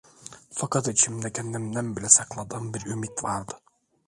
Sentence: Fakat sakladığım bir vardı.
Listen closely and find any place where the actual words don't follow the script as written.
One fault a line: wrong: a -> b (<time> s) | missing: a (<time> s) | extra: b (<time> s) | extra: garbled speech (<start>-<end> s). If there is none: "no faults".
extra: içimde kendimden bile (0.9 s)
extra: ümit (2.9 s)